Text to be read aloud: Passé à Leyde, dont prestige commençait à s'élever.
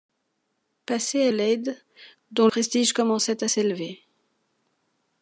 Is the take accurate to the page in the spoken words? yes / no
yes